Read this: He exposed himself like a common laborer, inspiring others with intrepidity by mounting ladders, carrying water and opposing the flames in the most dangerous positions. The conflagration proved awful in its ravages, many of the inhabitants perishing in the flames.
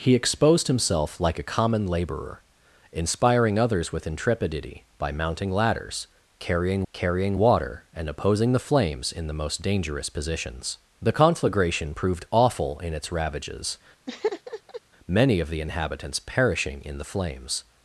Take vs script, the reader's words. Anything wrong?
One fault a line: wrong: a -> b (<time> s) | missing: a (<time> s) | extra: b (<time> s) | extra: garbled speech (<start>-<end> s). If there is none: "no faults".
extra: carrying (6.9 s)